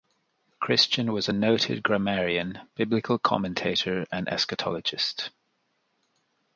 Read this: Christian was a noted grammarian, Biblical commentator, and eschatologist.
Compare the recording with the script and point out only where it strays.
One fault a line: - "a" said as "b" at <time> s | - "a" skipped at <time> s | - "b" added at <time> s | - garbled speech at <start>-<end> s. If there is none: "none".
none